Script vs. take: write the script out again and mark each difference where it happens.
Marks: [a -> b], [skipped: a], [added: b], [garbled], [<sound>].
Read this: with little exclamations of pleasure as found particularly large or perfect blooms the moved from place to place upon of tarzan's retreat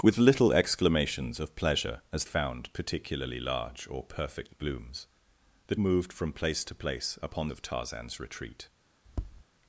with little exclamations of pleasure as found particularly large or perfect blooms the moved from place to place upon of tarzan's retreat [tap]